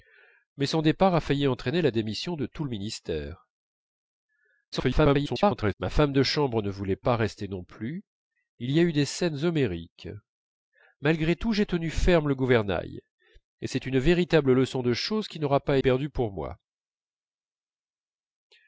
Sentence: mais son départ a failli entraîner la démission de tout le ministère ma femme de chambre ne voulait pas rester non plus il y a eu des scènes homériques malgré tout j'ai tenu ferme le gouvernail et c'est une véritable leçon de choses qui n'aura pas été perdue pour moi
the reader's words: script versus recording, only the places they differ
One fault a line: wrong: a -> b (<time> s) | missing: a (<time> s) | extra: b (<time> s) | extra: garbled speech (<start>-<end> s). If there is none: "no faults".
extra: garbled speech (4.7-5.7 s)
missing: été (15.8 s)